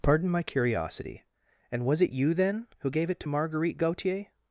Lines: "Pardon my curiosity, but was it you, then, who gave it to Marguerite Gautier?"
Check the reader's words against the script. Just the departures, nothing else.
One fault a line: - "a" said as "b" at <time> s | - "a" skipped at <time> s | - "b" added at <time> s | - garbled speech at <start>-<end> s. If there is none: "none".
- "but" said as "and" at 1.7 s